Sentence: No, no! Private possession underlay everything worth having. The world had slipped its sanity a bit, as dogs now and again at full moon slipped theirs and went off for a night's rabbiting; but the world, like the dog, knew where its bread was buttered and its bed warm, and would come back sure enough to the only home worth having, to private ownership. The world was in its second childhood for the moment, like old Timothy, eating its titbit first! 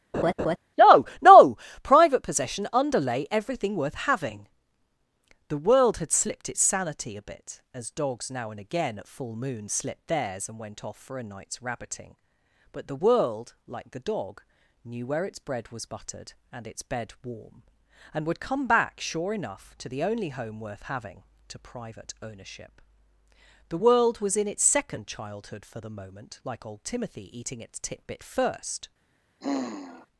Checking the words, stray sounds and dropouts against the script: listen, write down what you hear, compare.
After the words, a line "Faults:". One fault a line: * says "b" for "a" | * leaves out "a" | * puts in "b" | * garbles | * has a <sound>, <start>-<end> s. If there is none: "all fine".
No, no! Private possession underlay everything worth having. The world had slipped its sanity a bit, as dogs now and again at full moon slipped theirs and went off for a night's rabbiting; but the world, like the dog, knew where its bread was buttered and its bed warm, and would come back sure enough to the only home worth having, to private ownership. The world was in its second childhood for the moment, like old Timothy, eating its titbit first!
Faults:
* has a laugh, 0.1-0.6 s
* has a sigh, 29.4-30.1 s